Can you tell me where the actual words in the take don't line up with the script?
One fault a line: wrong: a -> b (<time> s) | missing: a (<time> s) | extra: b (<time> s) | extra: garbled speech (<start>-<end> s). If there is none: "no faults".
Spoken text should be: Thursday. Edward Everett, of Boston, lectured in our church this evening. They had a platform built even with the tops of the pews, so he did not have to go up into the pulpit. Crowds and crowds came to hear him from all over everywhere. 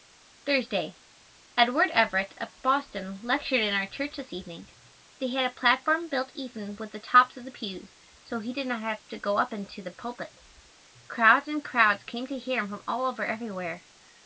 no faults